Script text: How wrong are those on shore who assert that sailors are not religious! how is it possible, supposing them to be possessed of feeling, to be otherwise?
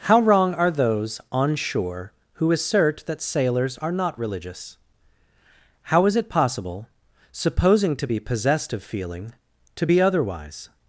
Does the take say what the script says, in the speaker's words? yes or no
no